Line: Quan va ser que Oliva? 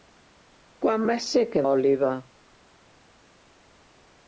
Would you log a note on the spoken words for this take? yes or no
no